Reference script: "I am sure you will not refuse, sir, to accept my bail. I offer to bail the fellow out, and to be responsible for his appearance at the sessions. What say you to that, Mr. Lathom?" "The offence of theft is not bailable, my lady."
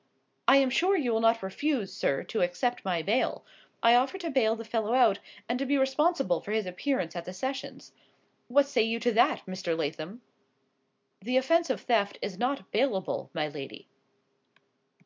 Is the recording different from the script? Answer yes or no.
no